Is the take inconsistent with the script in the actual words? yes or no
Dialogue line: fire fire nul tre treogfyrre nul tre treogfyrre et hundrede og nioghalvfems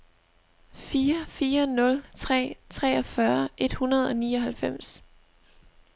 yes